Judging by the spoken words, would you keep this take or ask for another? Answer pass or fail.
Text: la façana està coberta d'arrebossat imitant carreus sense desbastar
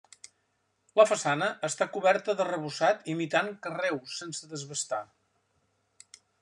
pass